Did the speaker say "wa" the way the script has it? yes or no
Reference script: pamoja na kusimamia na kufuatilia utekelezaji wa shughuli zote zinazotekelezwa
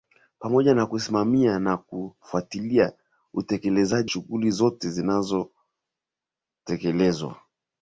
no